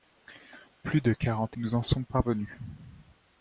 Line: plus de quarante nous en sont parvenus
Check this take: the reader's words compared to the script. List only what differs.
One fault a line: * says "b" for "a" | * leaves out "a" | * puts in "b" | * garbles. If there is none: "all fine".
all fine